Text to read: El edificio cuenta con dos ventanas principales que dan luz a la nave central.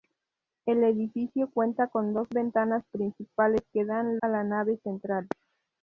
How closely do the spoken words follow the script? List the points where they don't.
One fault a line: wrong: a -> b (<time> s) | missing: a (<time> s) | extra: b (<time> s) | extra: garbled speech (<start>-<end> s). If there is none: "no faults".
missing: luz (4.2 s)